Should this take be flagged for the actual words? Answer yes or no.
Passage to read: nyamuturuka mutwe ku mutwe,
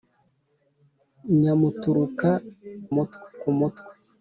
no